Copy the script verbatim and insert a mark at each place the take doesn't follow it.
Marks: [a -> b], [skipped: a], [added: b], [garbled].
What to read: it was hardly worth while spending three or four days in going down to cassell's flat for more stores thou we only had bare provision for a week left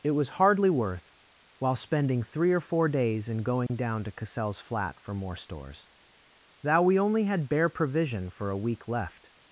it was hardly worth while spending three or four days in going down to cassell's flat for more stores thou we only had bare provision for a week left